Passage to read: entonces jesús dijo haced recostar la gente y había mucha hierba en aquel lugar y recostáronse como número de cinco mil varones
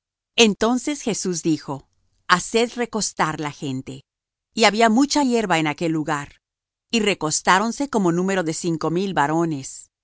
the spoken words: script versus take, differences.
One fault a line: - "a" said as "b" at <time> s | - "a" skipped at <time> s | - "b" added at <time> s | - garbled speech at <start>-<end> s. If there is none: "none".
none